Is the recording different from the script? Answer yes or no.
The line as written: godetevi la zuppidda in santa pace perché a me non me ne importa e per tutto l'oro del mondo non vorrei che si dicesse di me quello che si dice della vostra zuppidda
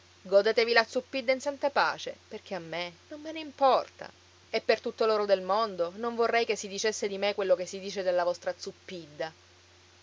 no